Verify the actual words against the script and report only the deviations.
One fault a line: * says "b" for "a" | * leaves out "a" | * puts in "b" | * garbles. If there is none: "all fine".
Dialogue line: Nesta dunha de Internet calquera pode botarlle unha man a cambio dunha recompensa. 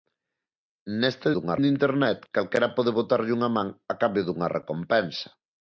all fine